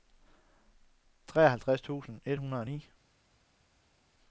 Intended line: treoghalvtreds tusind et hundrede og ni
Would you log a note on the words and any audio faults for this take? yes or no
no